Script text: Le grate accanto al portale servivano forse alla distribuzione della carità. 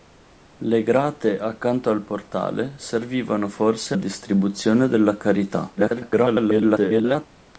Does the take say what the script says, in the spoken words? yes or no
no